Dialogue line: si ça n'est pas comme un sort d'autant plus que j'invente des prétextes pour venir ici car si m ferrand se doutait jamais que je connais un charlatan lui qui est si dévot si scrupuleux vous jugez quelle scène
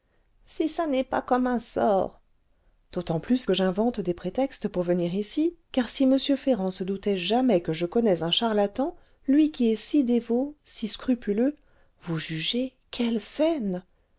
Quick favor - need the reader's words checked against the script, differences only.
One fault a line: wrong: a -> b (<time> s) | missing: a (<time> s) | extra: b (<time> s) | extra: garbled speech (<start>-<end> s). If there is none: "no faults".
no faults